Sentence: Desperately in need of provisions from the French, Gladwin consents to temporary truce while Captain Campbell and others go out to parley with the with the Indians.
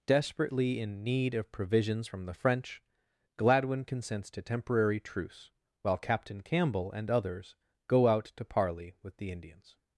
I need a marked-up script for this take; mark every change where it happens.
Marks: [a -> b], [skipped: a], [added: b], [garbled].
Desperately in need of provisions from the French, Gladwin consents to temporary truce while Captain Campbell and others go out to parley with the [skipped: with the] Indians.